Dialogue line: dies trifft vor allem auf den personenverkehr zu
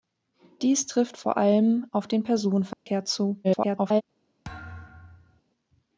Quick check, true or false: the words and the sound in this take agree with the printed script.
false